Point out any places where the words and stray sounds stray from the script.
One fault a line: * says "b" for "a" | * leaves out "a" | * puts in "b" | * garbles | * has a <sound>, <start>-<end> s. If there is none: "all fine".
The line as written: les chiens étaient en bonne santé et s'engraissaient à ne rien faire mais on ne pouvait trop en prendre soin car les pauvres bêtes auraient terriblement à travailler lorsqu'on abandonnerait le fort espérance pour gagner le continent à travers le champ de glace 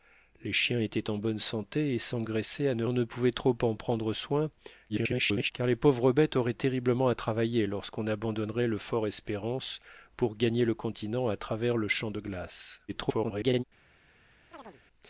* leaves out "rien faire mais"
* garbles
* garbles
* has a chirp, 14.5-14.8 s